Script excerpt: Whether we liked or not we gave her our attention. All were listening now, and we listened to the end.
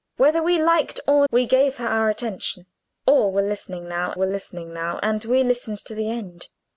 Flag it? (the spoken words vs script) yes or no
yes